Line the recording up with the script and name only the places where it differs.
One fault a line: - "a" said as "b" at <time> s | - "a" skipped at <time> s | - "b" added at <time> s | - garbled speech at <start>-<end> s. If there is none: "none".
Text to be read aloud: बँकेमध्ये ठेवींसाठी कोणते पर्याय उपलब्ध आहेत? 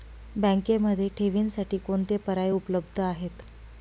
none